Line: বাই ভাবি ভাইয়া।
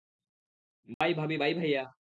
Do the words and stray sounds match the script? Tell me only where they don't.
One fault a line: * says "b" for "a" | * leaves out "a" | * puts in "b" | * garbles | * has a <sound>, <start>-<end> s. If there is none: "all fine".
* has a dropout, 0.9-1.0 s
* puts in "বাই"